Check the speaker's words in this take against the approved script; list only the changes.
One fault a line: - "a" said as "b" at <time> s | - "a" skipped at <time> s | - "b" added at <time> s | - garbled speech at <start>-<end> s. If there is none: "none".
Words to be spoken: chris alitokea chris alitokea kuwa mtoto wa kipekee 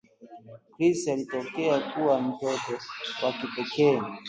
- "chris alitokea" skipped at 1.8 s